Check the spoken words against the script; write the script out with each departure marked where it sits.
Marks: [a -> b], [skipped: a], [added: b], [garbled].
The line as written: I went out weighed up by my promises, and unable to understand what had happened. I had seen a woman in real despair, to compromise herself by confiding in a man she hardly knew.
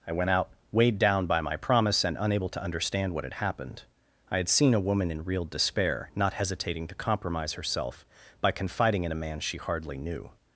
I went out weighed [up -> down] by my [promises, -> promise] and unable to understand what had happened. I had seen a woman in real despair, [added: not hesitating] to compromise herself by confiding in a man she hardly knew.